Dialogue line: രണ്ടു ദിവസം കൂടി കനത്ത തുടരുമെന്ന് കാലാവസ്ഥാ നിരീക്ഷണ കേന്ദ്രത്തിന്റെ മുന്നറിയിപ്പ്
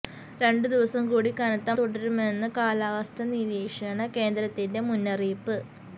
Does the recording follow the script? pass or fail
pass